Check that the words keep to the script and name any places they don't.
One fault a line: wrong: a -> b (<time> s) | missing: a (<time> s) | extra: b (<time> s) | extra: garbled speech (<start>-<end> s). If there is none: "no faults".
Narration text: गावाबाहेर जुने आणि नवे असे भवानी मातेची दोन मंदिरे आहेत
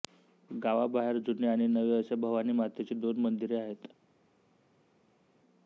no faults